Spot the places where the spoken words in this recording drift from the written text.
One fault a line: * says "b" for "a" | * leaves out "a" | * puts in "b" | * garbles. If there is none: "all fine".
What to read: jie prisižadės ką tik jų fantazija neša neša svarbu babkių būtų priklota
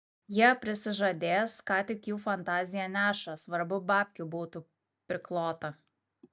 * leaves out "neša"